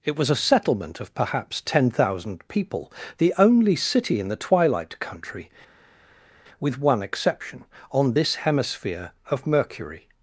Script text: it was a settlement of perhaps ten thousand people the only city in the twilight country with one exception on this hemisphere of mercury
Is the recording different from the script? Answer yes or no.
no